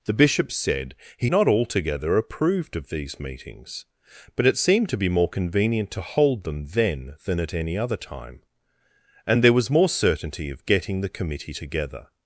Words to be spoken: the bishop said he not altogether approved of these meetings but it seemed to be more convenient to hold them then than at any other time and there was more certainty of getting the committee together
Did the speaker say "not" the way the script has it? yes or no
yes